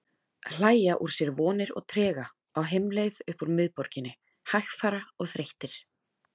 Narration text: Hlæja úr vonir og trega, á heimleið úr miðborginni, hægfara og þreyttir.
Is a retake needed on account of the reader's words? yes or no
yes